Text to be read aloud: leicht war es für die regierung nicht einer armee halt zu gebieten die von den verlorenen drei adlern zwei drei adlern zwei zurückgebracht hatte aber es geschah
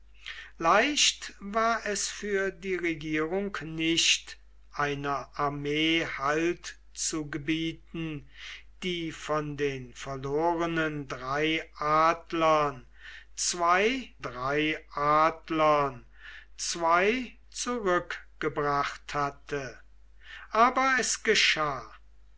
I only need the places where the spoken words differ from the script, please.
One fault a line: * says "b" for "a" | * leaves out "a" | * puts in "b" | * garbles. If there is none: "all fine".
all fine